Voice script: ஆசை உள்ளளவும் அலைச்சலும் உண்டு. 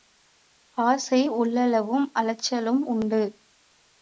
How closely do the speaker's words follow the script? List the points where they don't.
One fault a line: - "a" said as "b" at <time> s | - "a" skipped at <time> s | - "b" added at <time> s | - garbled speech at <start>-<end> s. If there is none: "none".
none